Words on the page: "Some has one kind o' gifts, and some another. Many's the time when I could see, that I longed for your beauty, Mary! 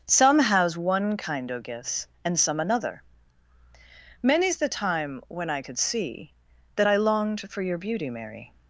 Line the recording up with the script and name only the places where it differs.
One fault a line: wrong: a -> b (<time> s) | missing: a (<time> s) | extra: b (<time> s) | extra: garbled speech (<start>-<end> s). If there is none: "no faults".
no faults